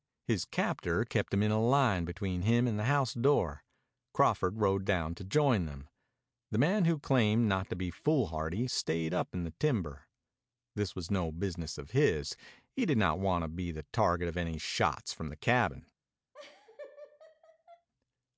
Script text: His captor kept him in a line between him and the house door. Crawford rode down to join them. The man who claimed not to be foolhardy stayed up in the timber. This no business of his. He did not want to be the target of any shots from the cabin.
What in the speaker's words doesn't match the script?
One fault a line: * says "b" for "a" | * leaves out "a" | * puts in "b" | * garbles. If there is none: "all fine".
* puts in "was"